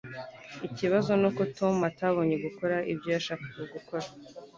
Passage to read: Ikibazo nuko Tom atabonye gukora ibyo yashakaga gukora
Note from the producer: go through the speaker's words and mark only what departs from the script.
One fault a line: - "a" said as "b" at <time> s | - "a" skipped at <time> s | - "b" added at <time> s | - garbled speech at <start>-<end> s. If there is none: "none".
none